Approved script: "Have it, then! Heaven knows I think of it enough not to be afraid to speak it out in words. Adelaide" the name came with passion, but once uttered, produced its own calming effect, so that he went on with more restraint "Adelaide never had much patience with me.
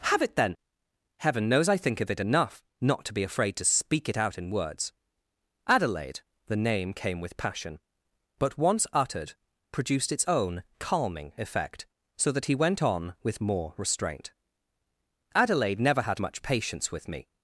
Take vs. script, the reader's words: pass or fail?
pass